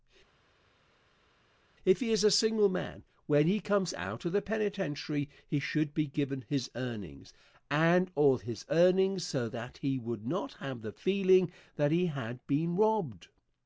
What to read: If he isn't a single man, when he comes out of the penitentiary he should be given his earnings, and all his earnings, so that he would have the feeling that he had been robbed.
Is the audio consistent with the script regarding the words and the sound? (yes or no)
no